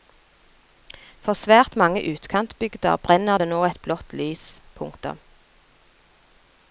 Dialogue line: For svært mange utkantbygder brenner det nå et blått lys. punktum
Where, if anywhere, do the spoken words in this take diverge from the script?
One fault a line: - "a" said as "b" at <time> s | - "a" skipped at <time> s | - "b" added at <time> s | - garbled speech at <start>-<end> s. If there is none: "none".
none